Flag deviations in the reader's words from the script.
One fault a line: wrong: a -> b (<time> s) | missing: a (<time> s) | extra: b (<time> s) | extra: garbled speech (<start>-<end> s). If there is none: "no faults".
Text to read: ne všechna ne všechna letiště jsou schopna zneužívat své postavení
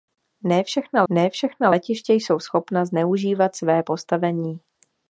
no faults